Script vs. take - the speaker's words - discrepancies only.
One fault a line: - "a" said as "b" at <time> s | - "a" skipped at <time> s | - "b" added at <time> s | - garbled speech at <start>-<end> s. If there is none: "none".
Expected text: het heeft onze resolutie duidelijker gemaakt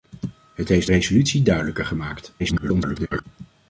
- "onze" skipped at 0.9 s
- garbled speech at 2.4-3.2 s